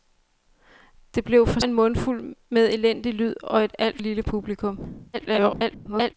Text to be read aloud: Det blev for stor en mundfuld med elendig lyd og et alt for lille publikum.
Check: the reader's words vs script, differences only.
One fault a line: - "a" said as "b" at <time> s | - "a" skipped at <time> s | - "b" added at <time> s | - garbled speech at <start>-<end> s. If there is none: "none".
- "stor" skipped at 1.6 s
- "for" skipped at 4.0 s
- garbled speech at 5.1-6.1 s